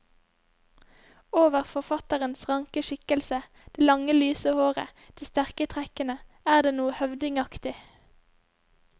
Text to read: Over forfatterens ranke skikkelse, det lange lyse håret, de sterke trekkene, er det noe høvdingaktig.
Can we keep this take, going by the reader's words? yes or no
yes